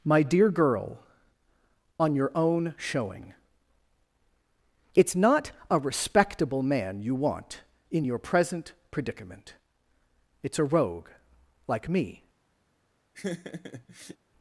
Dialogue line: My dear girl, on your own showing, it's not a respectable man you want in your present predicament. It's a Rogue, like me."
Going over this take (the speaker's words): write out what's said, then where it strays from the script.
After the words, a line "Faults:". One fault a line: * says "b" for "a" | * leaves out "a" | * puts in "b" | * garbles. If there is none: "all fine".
My dear girl, on your own showing, it's not a respectable man you want in your present predicament. It's a Rogue, like me."
Faults:
all fine